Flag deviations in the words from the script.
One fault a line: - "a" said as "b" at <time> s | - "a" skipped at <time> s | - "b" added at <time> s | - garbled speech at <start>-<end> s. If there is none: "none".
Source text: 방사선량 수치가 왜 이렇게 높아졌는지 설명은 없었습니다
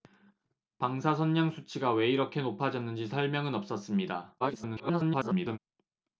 - garbled speech at 4.4-5.6 s